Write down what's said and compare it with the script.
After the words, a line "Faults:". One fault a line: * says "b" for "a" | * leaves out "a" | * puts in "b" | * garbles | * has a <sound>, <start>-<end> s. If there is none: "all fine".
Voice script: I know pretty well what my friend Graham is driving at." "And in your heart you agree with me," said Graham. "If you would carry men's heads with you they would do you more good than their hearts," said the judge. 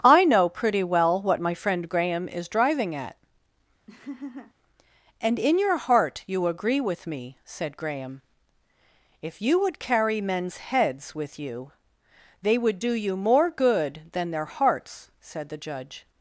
I know pretty well what my friend Graham is driving at." "And in your heart you agree with me," said Graham. "If you would carry men's heads with you they would do you more good than their hearts," said the judge.
Faults:
* has a laugh, 3.9-4.5 s